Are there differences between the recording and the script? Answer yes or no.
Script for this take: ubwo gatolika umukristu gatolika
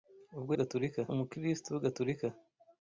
no